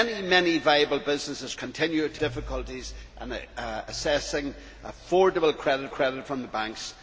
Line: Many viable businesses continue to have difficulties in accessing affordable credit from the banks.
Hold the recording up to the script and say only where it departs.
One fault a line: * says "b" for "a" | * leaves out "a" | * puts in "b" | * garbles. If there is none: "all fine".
* leaves out "have"
* puts in "credit"